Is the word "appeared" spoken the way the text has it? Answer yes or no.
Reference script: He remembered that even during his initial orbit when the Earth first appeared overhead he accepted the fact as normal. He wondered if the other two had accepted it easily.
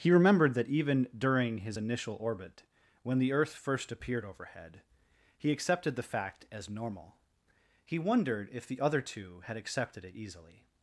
yes